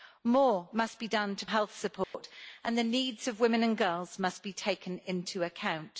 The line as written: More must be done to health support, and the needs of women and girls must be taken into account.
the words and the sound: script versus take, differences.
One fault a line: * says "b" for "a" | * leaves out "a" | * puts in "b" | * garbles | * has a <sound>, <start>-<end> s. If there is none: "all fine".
* has a dropout, 2.0-2.1 s